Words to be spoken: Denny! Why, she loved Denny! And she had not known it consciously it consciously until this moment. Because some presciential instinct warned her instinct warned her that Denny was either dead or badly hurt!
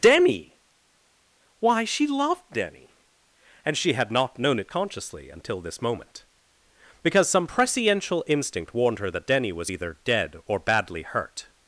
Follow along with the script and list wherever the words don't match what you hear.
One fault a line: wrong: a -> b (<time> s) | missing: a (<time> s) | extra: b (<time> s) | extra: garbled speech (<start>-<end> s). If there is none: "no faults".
missing: it consciously (5.3 s)
missing: instinct warned her (9.1 s)